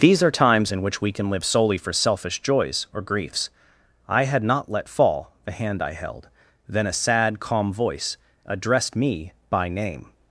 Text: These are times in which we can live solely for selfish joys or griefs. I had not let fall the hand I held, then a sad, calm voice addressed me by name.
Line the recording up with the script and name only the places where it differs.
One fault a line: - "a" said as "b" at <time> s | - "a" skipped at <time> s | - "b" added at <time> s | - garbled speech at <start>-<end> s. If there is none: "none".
none